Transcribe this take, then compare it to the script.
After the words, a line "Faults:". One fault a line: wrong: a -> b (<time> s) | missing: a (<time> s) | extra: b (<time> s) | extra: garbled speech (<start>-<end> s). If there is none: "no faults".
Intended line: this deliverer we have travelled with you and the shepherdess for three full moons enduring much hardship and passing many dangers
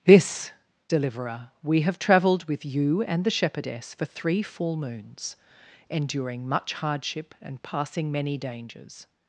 this deliverer we have travelled with you and the shepherdess for three full moons enduring much hardship and passing many dangers
Faults:
no faults